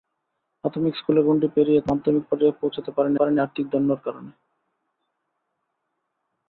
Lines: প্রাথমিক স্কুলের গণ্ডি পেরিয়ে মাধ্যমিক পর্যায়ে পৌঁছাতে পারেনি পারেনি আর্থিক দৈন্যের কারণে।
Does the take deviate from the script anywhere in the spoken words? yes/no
no